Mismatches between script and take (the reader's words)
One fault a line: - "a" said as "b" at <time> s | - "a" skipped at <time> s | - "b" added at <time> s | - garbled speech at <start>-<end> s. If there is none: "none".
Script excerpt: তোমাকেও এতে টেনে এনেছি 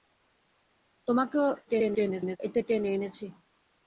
- garbled speech at 1.7-2.4 s